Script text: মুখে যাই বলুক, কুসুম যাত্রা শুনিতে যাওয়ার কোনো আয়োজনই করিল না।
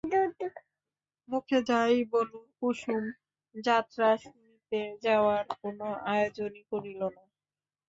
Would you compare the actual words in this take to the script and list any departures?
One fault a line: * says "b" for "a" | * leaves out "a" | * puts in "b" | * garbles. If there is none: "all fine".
all fine